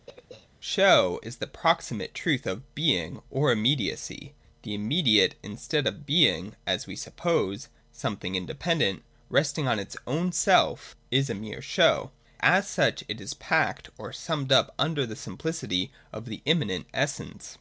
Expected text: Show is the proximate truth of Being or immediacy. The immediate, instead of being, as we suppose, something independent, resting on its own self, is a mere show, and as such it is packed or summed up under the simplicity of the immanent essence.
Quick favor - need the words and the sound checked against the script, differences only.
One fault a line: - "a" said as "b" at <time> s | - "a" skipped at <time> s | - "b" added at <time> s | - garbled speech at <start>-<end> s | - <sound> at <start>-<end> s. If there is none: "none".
- throat clearing at 0.1-0.5 s
- "and" skipped at 12.1 s